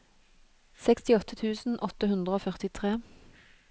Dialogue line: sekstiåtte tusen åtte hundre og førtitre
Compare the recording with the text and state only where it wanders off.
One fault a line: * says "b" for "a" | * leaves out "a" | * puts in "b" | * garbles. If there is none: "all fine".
all fine